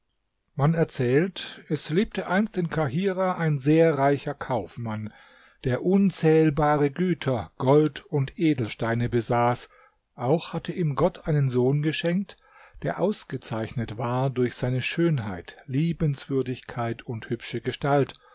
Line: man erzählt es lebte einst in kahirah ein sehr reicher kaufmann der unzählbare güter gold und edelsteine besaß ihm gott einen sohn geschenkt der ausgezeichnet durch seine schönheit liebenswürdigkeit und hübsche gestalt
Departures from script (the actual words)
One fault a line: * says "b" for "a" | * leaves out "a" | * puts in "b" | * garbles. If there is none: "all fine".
* puts in "auch hatte"
* puts in "war"